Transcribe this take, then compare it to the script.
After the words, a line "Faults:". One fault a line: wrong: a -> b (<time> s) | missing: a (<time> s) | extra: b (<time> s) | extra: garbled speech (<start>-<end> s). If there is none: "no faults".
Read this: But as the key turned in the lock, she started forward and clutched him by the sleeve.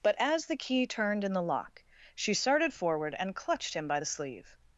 But as the key turned in the lock, she started forward and clutched him by the sleeve.
Faults:
no faults